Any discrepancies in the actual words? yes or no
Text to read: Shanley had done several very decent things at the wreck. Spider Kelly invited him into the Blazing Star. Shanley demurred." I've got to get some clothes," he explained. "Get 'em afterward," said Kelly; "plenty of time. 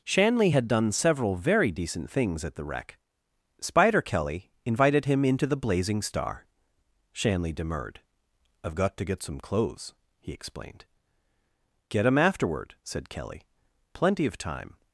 no